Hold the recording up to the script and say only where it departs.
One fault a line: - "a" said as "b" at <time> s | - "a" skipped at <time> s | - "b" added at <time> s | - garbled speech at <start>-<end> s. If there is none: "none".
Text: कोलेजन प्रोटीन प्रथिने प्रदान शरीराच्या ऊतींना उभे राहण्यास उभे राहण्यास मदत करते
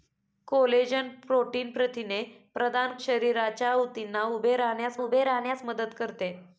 none